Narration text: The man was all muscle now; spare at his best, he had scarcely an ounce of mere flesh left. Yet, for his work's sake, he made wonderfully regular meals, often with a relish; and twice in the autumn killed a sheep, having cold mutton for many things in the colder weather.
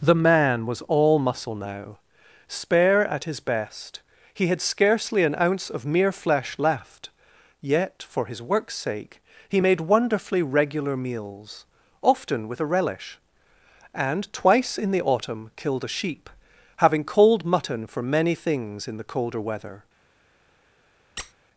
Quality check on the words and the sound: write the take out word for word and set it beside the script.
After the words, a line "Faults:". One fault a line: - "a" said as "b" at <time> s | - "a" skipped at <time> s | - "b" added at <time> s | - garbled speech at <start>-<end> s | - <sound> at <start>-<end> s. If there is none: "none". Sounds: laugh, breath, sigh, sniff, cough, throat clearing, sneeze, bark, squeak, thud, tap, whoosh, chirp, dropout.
The man was all muscle now; spare at his best, he had scarcely an ounce of mere flesh left. Yet, for his work's sake, he made wonderfully regular meals, often with a relish; and twice in the autumn killed a sheep, having cold mutton for many things in the colder weather.
Faults:
- squeak at 21.2-21.3 s